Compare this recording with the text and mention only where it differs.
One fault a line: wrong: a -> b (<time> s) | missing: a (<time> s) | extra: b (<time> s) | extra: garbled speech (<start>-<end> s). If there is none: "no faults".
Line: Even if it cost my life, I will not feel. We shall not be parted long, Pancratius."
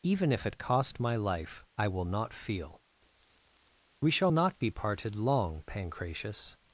no faults